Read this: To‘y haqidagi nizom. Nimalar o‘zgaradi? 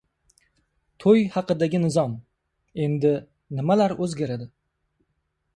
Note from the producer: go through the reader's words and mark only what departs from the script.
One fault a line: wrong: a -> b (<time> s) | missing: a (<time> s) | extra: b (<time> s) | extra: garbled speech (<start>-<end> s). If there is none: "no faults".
extra: Endi (2.9 s)